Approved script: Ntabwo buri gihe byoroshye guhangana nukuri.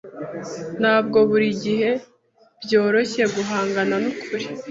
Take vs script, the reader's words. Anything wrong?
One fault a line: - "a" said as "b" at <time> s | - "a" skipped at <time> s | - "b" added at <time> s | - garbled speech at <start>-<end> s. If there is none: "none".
none